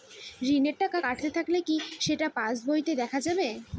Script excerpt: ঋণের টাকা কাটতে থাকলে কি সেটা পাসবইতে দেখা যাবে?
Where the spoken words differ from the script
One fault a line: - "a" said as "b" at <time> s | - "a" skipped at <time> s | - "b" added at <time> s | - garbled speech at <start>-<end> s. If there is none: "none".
none